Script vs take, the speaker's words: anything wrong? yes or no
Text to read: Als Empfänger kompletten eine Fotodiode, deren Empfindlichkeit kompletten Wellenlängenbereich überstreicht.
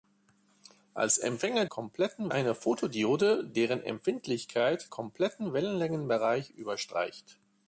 no